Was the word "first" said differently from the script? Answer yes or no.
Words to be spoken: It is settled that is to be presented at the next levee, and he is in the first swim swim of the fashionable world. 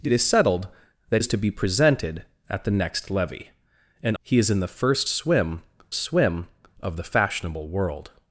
no